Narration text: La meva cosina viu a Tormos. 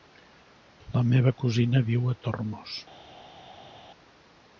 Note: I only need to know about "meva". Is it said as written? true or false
true